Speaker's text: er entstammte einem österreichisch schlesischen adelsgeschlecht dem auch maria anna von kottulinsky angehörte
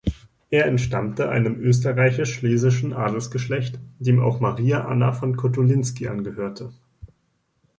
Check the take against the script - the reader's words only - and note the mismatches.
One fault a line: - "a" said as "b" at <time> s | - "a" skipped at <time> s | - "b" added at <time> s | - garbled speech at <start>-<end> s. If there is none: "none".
none